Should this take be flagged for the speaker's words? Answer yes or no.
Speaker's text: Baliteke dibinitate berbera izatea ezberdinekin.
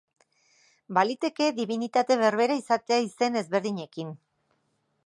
yes